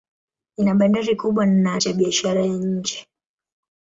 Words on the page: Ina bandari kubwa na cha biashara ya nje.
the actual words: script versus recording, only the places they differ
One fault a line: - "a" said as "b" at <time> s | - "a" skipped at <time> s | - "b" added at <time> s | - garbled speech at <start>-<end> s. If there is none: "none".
none